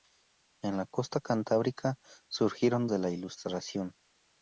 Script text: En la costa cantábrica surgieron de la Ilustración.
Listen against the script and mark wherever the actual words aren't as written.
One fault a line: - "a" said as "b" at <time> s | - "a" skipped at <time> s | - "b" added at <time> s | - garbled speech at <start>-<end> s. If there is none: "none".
none